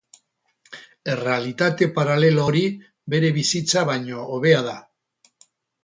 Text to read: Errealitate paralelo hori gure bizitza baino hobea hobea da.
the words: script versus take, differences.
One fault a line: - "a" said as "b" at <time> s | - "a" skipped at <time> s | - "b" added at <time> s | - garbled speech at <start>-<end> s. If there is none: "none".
- "gure" said as "bere" at 3.1 s
- "hobea" skipped at 4.6 s